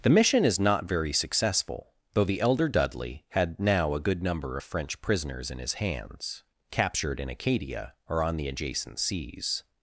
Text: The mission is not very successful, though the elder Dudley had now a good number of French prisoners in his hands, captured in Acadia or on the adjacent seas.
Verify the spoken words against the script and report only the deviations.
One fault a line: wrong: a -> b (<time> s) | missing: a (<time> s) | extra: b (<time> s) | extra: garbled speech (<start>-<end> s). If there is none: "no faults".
no faults